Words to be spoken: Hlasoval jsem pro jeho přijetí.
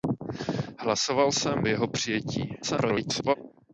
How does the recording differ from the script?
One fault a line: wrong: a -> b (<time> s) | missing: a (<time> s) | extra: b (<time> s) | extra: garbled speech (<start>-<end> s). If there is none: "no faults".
missing: pro (1.6 s)
extra: garbled speech (2.6-3.4 s)